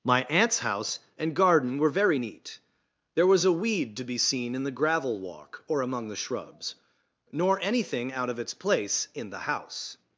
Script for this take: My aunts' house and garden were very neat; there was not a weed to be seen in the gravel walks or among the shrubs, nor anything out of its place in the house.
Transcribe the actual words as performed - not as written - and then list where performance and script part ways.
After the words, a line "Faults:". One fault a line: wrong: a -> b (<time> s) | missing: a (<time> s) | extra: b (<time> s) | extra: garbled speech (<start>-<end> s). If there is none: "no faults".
My aunts' house and garden were very neat; there was a weed to be seen in the gravel walk or among the shrubs, nor anything out of its place in the house.
Faults:
missing: not (3.4 s)
wrong: walks -> walk (5.2 s)